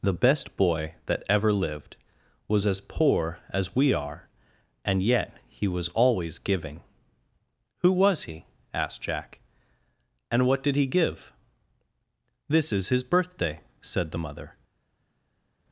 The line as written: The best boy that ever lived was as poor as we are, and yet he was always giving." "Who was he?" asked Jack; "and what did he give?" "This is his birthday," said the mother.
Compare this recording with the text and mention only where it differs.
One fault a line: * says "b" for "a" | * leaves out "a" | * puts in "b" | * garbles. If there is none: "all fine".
all fine